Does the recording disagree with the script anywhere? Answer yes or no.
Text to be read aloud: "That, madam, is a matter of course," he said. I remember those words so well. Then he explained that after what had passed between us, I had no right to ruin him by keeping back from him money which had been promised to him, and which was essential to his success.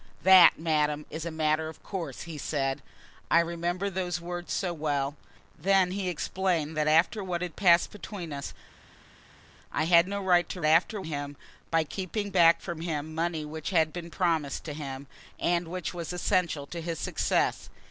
yes